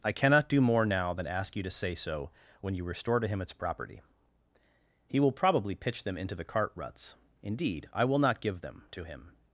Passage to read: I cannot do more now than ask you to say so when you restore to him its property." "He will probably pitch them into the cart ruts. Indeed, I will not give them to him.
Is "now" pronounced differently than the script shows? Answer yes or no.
no